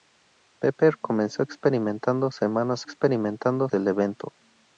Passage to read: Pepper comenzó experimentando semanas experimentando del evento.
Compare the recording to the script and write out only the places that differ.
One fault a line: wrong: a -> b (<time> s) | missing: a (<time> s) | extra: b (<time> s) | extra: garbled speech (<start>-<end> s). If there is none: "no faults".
no faults